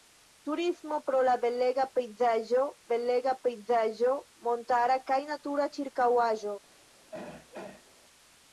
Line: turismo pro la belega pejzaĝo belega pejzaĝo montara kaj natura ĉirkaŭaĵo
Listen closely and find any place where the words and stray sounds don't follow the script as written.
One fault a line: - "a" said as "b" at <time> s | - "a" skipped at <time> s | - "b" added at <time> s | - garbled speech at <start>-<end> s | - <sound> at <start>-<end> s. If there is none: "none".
- throat clearing at 7.1-7.9 s